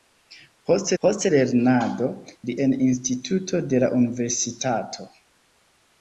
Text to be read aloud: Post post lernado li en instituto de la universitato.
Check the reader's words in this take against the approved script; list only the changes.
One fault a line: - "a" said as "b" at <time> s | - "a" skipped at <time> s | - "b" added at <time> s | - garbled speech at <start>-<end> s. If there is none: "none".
none